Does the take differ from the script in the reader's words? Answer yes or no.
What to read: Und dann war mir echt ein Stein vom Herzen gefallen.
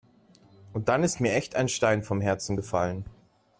yes